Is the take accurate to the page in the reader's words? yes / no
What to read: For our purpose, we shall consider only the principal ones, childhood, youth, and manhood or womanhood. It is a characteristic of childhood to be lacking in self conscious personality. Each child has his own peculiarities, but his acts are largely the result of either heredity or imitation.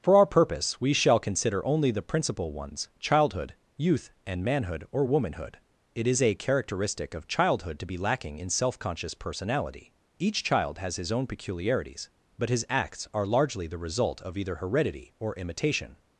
yes